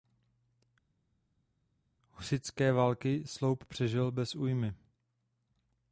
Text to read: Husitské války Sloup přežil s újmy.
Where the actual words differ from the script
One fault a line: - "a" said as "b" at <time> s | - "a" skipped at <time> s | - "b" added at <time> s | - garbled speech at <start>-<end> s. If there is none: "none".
- "s" said as "bez" at 4.1 s